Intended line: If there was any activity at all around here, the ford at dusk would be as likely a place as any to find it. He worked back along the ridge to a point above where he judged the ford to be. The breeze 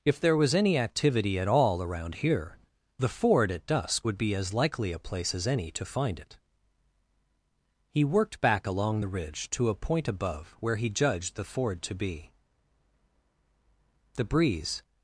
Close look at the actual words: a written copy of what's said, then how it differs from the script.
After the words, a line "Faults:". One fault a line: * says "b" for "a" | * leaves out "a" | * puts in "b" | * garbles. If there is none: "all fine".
If there was any activity at all around here, the ford at dusk would be as likely a place as any to find it. He worked back along the ridge to a point above where he judged the ford to be. The breeze
Faults:
all fine